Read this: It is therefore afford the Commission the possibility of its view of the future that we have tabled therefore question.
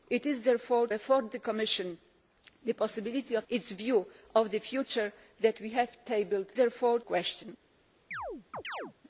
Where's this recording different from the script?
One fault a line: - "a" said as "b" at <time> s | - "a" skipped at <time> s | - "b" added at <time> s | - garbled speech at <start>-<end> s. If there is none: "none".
none